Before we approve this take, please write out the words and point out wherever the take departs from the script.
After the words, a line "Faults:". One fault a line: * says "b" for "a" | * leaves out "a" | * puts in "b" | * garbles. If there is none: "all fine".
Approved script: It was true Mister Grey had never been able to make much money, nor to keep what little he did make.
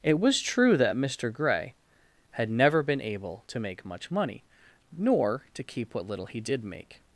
It was true that Mister Grey had never been able to make much money, nor to keep what little he did make.
Faults:
* puts in "that"